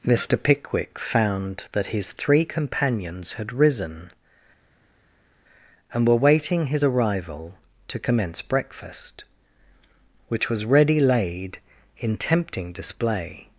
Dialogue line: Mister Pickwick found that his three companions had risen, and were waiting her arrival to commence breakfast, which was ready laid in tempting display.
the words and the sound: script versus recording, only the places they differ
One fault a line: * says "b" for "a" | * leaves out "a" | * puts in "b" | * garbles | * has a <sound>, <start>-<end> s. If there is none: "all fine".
* says "his" for "her"